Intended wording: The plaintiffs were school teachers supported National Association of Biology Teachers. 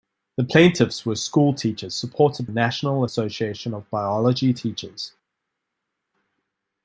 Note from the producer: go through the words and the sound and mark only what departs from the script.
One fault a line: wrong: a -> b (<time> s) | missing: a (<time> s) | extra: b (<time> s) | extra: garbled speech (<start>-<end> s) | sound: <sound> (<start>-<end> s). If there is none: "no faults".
no faults